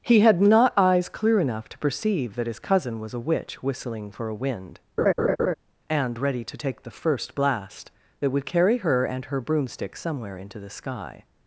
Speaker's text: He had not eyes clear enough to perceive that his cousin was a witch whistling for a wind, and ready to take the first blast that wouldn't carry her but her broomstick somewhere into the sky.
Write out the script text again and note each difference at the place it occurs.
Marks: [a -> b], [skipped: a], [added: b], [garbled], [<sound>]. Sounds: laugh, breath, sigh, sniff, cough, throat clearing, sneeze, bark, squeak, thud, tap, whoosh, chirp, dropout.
He had not eyes clear enough to perceive that his cousin was a witch whistling for a wind, [laugh] and ready to take the first blast that [wouldn't -> would] carry her [but -> and] her broomstick somewhere into the sky.